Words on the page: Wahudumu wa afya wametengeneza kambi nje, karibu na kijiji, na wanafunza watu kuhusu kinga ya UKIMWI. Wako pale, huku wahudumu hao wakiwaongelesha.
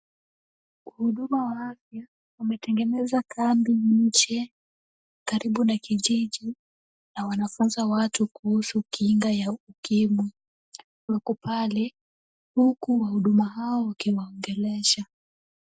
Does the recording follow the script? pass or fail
pass